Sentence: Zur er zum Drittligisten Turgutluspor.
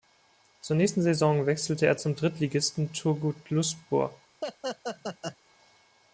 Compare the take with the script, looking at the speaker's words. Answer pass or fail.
fail